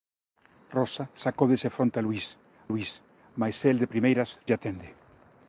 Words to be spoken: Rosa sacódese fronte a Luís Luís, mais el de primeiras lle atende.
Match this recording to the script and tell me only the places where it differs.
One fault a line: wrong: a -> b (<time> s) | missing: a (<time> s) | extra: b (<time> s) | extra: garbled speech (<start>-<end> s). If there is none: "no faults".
no faults